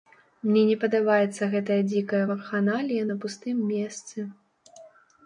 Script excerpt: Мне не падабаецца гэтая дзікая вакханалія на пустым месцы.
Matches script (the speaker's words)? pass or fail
pass